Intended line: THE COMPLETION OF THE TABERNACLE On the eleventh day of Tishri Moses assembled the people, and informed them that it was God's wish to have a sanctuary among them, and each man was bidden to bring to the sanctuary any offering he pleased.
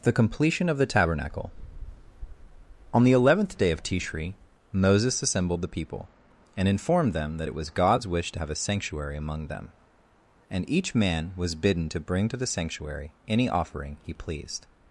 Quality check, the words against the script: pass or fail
pass